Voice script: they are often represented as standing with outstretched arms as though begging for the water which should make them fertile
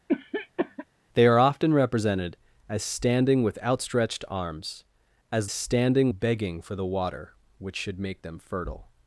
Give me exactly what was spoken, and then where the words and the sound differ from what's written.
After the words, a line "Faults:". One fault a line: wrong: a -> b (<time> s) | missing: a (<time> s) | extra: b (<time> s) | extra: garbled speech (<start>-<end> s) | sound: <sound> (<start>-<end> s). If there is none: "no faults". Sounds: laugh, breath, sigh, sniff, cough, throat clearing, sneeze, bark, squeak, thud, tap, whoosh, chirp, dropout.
they are often represented as standing with outstretched arms as standing begging for the water which should make them fertile
Faults:
sound: cough (0.1-0.9 s)
wrong: though -> standing (5.5 s)